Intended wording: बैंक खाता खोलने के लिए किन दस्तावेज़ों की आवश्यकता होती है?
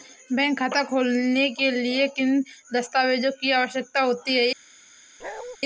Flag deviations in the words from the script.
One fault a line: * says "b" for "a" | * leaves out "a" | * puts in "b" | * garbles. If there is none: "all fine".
all fine